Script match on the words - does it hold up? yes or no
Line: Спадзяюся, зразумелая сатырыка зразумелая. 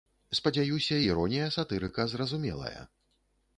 no